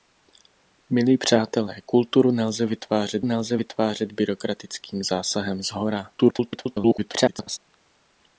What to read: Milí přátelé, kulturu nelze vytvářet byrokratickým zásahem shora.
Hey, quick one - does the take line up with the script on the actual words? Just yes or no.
no